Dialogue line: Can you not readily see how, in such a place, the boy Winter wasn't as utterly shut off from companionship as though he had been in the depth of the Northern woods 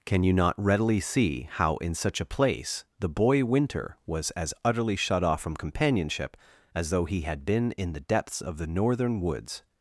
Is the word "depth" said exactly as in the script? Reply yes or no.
no